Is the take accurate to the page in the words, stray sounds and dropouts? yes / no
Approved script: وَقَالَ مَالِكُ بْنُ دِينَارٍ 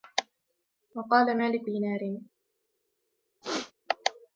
no